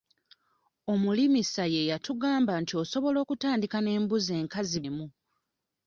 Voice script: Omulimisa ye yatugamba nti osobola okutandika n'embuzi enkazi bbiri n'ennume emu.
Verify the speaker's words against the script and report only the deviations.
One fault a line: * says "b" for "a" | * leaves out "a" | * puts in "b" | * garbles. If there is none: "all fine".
* leaves out "bbiri n'ennume"